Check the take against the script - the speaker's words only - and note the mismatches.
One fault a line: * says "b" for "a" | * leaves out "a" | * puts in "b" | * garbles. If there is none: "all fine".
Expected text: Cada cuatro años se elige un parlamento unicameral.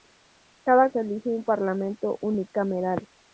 * leaves out "cuatro años"